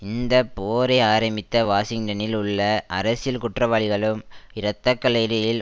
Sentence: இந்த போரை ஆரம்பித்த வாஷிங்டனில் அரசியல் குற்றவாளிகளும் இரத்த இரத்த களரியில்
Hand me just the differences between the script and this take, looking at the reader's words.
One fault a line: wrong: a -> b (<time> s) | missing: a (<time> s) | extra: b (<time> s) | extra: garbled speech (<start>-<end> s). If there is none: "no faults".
extra: உள்ள (2.4 s)
missing: இரத்த (4.9 s)